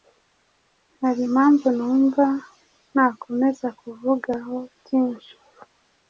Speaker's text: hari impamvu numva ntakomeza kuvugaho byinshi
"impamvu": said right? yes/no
yes